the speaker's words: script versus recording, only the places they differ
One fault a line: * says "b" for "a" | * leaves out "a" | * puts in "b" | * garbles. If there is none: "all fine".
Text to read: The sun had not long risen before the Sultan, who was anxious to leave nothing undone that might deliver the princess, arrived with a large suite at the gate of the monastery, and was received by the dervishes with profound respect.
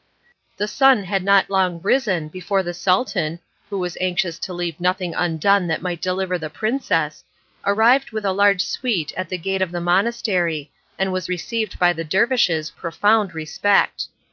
* leaves out "with"